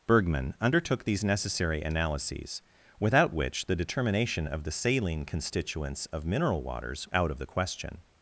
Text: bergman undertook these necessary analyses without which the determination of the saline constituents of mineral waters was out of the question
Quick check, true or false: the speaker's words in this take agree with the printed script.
false